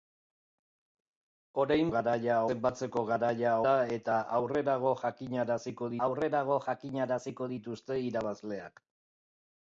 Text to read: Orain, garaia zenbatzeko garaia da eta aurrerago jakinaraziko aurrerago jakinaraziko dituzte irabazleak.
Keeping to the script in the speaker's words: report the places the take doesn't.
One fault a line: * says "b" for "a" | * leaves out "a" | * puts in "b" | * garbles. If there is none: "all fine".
all fine